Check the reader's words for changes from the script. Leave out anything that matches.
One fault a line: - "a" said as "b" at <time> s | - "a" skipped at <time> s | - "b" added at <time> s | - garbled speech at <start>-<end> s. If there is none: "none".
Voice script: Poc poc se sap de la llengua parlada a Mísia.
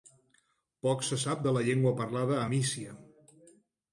- "poc" skipped at 1.0 s